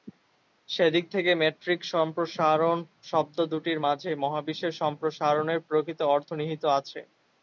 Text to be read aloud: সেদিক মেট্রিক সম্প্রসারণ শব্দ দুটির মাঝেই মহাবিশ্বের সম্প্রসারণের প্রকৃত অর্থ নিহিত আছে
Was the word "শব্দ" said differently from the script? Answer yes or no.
no